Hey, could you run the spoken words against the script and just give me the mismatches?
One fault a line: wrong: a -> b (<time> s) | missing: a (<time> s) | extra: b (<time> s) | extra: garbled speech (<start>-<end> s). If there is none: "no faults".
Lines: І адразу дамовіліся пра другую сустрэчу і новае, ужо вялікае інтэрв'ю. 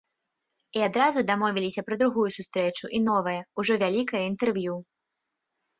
no faults